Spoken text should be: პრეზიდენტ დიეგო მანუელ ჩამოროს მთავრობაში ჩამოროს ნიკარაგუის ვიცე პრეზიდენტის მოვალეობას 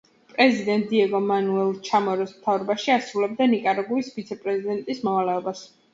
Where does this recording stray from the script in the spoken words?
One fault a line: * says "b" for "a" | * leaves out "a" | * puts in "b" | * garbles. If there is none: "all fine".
* says "ასრულებდა" for "ჩამოროს"